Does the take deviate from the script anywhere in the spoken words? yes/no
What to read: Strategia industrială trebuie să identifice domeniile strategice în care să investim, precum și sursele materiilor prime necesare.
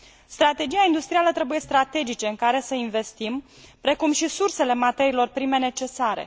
yes